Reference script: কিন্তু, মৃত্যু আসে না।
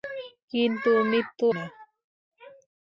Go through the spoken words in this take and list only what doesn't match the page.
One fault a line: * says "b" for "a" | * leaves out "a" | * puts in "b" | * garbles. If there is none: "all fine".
* leaves out "আসে"